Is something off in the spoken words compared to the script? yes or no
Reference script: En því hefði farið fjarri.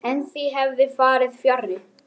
no